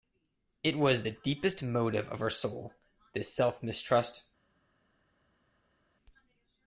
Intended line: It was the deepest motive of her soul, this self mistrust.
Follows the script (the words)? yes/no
yes